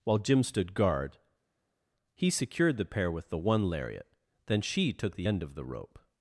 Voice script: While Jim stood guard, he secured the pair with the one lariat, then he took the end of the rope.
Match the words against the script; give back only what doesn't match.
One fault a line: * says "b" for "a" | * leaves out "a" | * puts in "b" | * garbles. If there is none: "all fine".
* says "she" for "he"